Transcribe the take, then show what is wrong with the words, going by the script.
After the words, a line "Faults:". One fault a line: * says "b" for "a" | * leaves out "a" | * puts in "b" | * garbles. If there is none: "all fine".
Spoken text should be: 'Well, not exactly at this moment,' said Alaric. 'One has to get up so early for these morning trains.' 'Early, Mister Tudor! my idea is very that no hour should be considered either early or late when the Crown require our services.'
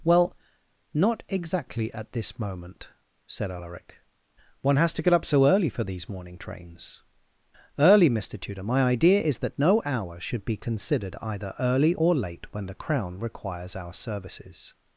'Well, not exactly at this moment,' said Alaric. 'One has to get up so early for these morning trains.' 'Early, Mister Tudor! my idea is that no hour should be considered either early or late when the Crown requires our services.'
Faults:
* leaves out "very"
* says "requires" for "require"